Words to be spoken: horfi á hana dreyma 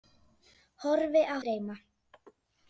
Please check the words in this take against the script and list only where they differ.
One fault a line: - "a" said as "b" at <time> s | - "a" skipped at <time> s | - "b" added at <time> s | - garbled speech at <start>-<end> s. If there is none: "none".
- "hana" skipped at 1.4 s